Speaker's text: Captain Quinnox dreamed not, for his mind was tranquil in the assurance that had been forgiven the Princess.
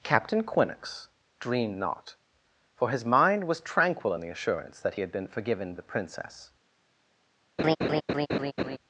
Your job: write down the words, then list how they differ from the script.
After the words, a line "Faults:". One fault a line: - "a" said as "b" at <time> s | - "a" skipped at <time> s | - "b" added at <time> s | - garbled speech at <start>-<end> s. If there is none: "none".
Captain Quinnox dreamed not, for his mind was tranquil in the assurance that had been forgiven the Princess.
Faults:
none